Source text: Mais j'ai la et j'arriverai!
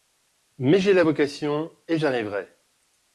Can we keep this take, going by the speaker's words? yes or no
no